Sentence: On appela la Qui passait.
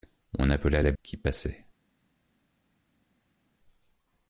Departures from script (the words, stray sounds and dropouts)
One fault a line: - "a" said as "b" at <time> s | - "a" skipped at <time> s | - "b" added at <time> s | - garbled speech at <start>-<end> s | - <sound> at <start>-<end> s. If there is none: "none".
none